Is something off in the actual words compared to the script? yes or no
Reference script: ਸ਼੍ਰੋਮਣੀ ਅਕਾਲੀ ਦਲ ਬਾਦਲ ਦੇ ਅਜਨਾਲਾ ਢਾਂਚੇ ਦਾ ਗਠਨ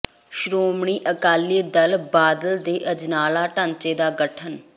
no